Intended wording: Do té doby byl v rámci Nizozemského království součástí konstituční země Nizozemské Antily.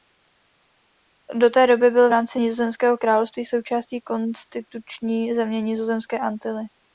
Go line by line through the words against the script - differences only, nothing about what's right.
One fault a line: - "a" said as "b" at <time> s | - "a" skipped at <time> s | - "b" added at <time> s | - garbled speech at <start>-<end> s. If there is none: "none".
none